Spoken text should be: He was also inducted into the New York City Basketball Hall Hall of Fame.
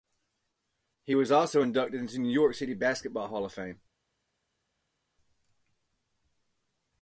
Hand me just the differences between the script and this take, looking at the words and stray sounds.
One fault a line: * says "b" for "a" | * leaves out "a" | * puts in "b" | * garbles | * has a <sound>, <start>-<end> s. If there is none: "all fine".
* leaves out "Hall"